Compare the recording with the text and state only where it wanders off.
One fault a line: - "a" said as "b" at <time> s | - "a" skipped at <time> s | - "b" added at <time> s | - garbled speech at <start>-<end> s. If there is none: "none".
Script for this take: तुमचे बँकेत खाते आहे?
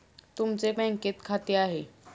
none